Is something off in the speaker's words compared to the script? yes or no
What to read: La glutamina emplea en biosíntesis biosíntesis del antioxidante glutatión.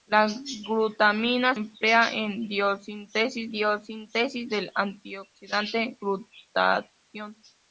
no